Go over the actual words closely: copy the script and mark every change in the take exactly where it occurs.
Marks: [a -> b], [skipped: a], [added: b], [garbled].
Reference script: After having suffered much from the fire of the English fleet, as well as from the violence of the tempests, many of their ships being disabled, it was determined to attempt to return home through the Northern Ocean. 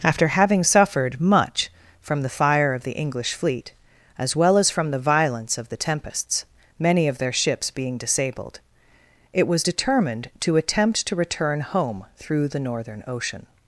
After having suffered much from the fire of the English fleet, as well as from the violence of the tempests, many of their ships being disabled, it was determined to attempt to return home through the Northern Ocean.